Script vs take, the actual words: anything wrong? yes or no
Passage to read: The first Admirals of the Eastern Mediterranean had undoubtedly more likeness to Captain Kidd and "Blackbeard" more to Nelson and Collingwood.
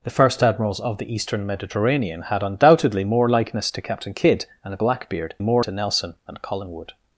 no